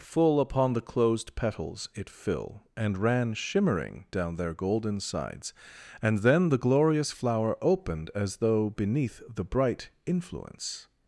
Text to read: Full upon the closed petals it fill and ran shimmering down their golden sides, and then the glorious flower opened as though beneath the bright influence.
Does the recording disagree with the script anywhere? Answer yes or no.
no